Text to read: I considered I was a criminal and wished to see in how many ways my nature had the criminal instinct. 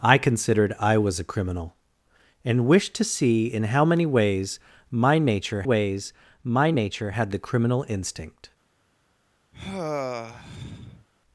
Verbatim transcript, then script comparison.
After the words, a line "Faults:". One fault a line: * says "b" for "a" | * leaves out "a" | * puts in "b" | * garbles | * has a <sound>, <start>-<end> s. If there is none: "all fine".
I considered I was a criminal and wished to see in how many ways my nature ways my nature had the criminal instinct.
Faults:
* puts in "ways my nature"
* has a sigh, 9.5-11.1 s